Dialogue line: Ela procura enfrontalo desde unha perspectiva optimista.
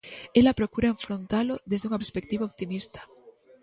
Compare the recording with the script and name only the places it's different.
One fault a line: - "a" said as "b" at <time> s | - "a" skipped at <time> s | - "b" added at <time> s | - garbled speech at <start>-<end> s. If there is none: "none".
none